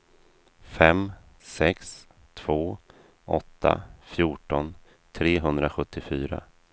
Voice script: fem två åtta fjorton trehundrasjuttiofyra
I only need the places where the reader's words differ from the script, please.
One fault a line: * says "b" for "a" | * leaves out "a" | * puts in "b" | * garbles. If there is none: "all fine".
* puts in "sex"